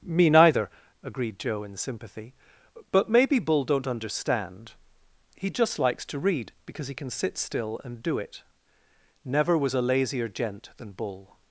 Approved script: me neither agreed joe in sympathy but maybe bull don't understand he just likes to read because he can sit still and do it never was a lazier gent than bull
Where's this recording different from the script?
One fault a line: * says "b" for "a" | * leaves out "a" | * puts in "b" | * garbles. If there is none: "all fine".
all fine